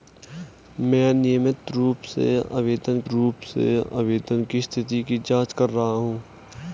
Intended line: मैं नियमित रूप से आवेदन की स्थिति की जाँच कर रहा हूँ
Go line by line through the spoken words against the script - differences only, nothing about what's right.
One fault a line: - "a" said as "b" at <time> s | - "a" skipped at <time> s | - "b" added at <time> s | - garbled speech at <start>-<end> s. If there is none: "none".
- "रूप से आवेदन" added at 3.1 s